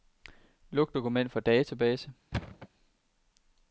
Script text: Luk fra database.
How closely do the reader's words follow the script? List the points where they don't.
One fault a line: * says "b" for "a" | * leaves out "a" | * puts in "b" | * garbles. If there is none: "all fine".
* puts in "dokument"